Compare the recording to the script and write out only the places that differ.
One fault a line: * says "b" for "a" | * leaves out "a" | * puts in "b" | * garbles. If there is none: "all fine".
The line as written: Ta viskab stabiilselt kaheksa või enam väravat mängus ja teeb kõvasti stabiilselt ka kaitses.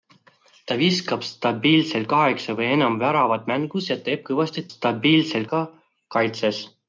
all fine